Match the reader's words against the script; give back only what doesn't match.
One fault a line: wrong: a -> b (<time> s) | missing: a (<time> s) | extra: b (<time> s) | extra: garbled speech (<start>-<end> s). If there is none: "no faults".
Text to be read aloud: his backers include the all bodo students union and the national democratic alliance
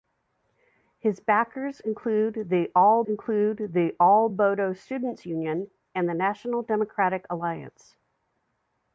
extra: include the all (3.0 s)